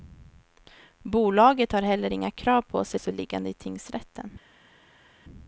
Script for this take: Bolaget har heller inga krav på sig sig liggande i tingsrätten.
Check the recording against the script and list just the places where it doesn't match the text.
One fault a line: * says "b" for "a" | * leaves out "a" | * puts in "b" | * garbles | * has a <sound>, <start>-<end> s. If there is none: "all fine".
all fine